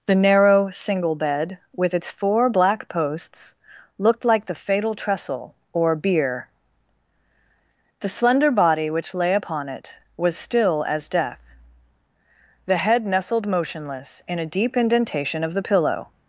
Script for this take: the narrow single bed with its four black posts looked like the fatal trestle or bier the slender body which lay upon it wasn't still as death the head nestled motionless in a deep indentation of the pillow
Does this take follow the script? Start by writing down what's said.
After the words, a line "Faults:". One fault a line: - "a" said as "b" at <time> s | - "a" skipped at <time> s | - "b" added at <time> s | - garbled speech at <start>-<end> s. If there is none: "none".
the narrow single bed with its four black posts looked like the fatal trestle or bier the slender body which lay upon it was still as death the head nestled motionless in a deep indentation of the pillow
Faults:
- "wasn't" said as "was" at 10.2 s